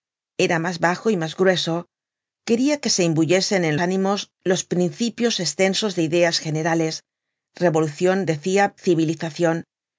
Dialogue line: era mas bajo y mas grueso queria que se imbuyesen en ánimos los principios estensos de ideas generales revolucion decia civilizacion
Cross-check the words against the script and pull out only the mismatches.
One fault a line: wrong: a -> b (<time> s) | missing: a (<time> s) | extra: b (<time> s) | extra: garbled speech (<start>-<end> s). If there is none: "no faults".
no faults